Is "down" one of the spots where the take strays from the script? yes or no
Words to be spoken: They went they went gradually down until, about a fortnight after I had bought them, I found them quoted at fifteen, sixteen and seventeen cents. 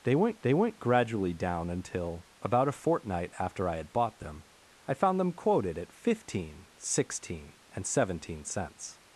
no